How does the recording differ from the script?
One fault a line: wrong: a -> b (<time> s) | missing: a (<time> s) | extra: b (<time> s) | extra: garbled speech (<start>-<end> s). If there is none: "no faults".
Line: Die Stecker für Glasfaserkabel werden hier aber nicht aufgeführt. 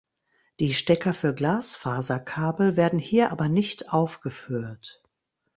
no faults